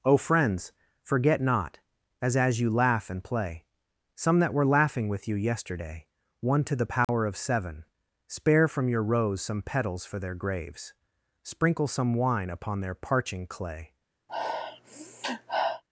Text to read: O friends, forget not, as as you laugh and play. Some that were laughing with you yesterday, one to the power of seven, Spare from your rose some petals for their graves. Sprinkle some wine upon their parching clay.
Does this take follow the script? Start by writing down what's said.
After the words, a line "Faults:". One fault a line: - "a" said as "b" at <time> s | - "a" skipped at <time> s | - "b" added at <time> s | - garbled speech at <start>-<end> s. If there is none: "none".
O friends, forget not, as as you laugh and play. Some that were laughing with you yesterday, one to the power of seven, Spare from your rose some petals for their graves. Sprinkle some wine upon their parching clay.
Faults:
none